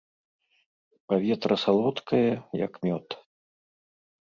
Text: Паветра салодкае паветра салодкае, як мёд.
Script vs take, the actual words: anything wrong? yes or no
yes